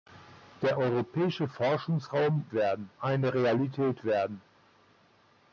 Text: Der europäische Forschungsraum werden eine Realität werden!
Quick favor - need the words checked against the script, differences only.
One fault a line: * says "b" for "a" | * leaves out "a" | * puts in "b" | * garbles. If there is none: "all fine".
all fine